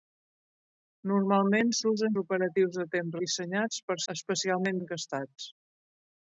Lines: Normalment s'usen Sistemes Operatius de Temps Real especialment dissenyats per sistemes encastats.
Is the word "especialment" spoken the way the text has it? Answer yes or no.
no